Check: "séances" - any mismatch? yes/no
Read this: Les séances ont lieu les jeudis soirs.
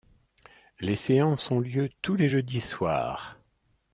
no